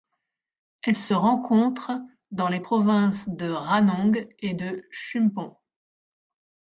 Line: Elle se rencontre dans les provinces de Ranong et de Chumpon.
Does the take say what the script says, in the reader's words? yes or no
yes